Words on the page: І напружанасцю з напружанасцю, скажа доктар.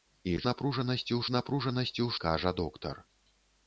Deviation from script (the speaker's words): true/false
false